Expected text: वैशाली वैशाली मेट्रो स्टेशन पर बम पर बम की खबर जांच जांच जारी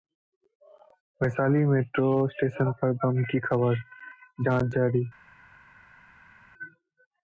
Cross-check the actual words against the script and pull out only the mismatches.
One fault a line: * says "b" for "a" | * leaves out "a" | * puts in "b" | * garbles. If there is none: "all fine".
* leaves out "वैशाली"
* leaves out "पर बम"
* leaves out "जांच"